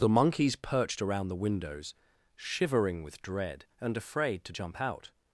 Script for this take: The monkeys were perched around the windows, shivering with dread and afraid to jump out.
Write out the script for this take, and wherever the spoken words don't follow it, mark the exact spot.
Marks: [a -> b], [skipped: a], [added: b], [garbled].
The monkeys [skipped: were] perched around the windows, shivering with dread and afraid to jump out.